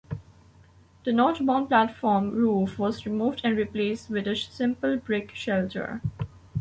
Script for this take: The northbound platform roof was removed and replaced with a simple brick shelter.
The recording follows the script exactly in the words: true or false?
true